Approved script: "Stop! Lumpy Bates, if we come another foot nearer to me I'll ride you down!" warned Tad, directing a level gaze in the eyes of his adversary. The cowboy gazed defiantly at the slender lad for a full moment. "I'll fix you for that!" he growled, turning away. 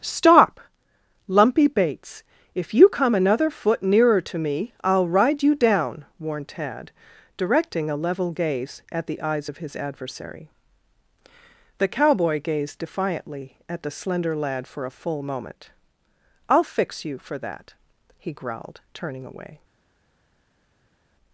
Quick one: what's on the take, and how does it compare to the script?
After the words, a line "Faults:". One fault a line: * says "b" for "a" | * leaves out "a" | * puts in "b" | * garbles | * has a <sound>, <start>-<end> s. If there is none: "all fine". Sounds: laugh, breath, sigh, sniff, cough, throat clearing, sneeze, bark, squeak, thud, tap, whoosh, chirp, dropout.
"Stop! Lumpy Bates, if you come another foot nearer to me I'll ride you down!" warned Tad, directing a level gaze at the eyes of his adversary. The cowboy gazed defiantly at the slender lad for a full moment. "I'll fix you for that!" he growled, turning away.
Faults:
* says "you" for "we"
* says "at" for "in"